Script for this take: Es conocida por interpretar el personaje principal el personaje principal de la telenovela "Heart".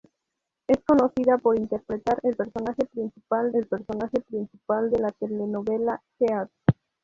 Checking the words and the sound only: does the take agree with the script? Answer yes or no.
yes